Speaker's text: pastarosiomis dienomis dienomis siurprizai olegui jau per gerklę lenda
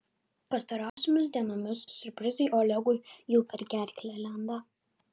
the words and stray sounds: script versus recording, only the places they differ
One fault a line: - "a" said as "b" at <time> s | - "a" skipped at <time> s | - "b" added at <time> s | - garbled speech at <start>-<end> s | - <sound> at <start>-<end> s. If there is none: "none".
- dropout at 0.9-1.0 s
- "dienomis" skipped at 1.8 s